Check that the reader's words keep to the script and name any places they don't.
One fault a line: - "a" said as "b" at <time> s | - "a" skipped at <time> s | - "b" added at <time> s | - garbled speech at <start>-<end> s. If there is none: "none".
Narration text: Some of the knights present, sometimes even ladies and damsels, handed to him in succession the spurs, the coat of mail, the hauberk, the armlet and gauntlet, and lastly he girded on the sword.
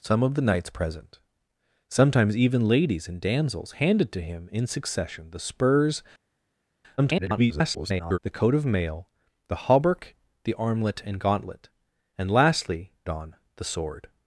- garbled speech at 7.0-8.2 s
- "he girded" skipped at 12.9 s